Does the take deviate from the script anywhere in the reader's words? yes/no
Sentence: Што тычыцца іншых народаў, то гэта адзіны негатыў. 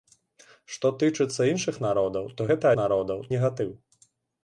yes